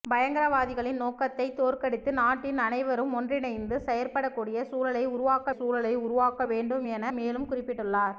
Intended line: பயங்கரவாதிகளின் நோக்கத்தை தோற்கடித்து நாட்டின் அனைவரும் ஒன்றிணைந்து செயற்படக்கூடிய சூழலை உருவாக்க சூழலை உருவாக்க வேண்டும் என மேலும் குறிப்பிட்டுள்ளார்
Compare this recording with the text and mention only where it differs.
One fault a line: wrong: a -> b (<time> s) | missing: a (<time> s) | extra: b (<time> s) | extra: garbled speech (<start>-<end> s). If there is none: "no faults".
no faults